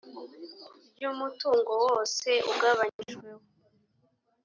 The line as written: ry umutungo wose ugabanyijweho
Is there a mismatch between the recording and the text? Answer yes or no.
no